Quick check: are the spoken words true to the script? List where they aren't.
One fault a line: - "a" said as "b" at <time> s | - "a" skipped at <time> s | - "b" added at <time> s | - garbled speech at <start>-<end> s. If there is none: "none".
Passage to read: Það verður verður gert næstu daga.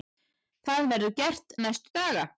- "verður" skipped at 1.1 s